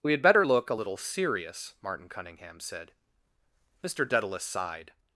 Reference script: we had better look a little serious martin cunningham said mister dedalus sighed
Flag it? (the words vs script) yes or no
no